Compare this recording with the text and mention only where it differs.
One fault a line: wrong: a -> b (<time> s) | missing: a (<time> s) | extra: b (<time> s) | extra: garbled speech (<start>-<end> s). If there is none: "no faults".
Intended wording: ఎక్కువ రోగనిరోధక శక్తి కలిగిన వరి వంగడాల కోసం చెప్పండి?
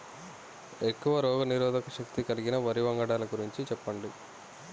wrong: కోసం -> గురించి (3.3 s)